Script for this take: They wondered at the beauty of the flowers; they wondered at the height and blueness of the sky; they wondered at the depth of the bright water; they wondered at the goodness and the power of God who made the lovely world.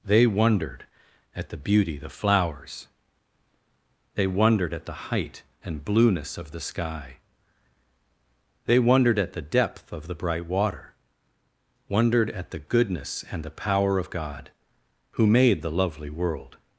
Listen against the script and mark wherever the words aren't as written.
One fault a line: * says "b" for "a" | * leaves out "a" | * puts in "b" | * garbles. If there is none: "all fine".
* leaves out "of"
* leaves out "they"